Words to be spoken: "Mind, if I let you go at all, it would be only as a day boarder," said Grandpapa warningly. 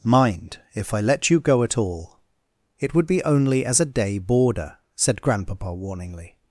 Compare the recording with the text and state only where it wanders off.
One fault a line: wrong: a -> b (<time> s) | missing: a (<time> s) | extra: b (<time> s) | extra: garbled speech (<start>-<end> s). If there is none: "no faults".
no faults